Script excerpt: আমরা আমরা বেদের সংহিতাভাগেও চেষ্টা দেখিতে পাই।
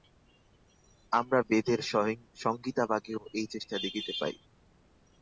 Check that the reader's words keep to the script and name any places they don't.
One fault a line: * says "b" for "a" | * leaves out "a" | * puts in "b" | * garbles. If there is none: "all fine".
* leaves out "আমরা"
* puts in "এই"